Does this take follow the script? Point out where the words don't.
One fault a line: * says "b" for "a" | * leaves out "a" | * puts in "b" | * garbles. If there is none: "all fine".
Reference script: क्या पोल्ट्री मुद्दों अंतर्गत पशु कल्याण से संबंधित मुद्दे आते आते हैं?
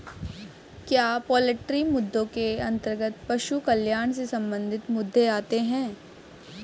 * puts in "के"
* leaves out "आते"